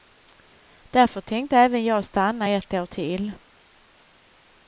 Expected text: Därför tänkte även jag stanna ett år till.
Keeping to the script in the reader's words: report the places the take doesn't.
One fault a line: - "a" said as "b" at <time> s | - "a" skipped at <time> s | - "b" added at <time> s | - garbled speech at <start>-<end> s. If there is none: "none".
none